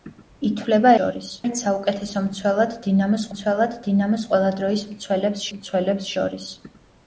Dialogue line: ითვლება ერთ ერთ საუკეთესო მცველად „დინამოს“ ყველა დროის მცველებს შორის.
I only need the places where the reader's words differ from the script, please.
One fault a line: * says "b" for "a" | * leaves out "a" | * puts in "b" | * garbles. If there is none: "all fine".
* says "შორის" for "ერთ"
* puts in "მცველად დინამოს"
* puts in "მცველებს"